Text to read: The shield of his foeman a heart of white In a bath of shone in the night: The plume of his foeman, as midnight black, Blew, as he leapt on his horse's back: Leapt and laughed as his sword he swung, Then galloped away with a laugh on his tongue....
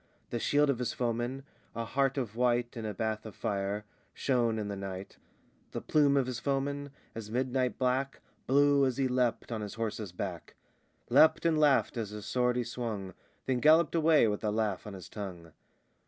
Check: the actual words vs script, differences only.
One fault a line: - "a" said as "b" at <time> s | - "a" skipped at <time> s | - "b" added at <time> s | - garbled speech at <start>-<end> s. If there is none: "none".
- "fire" added at 3.4 s